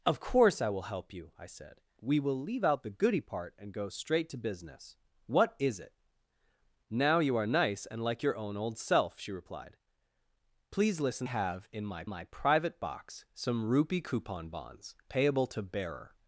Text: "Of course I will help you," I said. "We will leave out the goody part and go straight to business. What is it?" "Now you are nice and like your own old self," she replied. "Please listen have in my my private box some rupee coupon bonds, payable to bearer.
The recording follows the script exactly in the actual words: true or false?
true